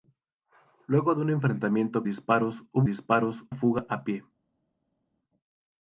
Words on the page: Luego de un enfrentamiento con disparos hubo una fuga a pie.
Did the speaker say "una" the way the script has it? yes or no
no